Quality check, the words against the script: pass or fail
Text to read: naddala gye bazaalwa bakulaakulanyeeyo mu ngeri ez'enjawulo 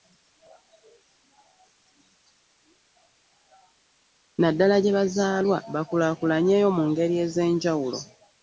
pass